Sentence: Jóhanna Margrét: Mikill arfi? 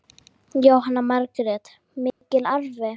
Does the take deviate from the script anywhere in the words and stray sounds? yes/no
yes